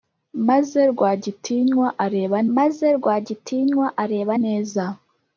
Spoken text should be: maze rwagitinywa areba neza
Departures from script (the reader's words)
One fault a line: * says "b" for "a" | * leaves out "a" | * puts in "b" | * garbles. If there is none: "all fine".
* puts in "maze rwagitinywa areba"